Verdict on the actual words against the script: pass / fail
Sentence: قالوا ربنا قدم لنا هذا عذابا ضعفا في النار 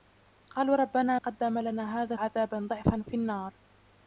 pass